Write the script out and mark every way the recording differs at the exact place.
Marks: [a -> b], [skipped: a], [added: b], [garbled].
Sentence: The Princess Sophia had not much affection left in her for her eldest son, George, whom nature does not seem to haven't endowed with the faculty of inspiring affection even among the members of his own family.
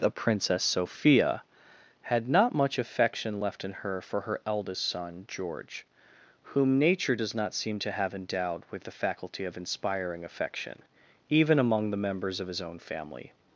The Princess Sophia had not much affection left in her for her eldest son, George, whom nature does not seem to [haven't -> have] endowed with the faculty of inspiring affection even among the members of his own family.